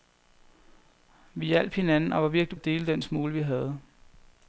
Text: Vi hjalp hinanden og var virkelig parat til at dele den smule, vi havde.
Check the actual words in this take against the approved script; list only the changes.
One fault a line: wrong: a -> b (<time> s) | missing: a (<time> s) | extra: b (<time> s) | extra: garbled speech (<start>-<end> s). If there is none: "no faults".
missing: parat til (2.6 s)